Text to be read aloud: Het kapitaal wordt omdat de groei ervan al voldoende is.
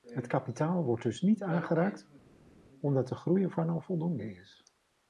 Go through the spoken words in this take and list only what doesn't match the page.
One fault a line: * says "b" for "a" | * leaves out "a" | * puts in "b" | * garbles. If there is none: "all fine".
* puts in "dus niet aangeraakt"